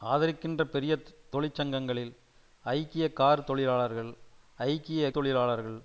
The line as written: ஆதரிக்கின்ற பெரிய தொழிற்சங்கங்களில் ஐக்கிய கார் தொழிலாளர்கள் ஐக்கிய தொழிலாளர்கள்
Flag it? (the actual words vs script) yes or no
no